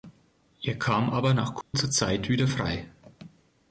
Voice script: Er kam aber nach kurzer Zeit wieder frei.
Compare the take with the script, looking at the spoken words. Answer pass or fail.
pass